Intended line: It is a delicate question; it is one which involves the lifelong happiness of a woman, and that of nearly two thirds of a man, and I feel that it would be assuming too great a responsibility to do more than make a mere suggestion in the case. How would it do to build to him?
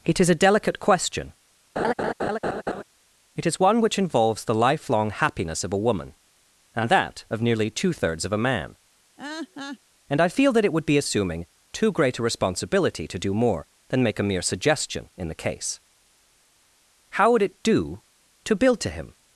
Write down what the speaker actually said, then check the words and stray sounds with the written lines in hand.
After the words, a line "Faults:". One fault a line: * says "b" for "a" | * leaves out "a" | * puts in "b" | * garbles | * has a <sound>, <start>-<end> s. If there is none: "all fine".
It is a delicate question; it is one which involves the lifelong happiness of a woman, and that of nearly two thirds of a man, and I feel that it would be assuming too great a responsibility to do more than make a mere suggestion in the case. How would it do to build to him?
Faults:
* has a laugh, 1.8-2.8 s
* has a laugh, 9.2-9.8 s